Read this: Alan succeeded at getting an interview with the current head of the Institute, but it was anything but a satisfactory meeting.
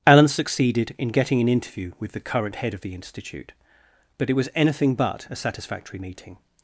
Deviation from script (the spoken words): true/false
true